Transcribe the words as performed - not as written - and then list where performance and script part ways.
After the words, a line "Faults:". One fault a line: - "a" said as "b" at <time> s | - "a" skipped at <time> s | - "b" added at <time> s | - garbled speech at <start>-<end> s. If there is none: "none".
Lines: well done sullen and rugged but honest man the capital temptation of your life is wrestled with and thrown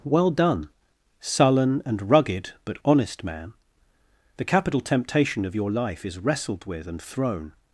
well done sullen and rugged but honest man the capital temptation of your life is wrestled with and thrown
Faults:
none